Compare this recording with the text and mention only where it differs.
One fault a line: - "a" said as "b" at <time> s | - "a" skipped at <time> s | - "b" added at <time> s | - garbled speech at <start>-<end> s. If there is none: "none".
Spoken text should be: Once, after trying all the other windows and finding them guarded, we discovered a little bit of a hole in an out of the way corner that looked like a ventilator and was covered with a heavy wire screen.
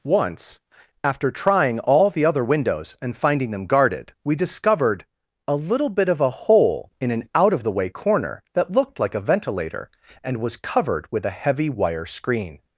none